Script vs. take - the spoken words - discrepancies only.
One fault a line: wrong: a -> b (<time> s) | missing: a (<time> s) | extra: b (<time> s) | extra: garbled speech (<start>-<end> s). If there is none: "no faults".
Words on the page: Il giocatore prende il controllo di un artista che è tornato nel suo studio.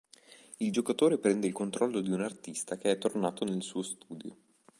no faults